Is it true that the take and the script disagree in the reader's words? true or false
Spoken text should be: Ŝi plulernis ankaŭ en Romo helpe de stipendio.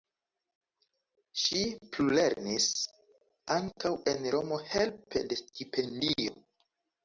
false